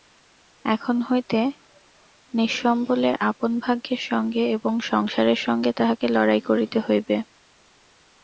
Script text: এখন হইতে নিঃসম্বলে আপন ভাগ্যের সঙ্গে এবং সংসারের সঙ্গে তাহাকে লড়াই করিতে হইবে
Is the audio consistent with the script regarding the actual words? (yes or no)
yes